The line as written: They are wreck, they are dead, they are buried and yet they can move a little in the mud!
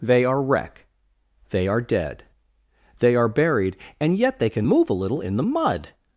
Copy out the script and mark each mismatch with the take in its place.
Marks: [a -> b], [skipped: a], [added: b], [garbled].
They are wreck, they are dead, they are buried and yet they can move a little in the mud!